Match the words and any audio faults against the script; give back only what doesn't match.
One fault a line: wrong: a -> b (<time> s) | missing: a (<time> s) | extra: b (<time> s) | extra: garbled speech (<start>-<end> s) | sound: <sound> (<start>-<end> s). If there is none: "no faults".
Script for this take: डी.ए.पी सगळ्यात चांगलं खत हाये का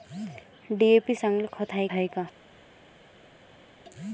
missing: सगळ्यात (1.1 s)
extra: हाये (1.9 s)